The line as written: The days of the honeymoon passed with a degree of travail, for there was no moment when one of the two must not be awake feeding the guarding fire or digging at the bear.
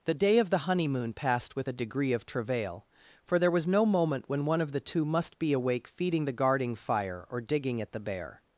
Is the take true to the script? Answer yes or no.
no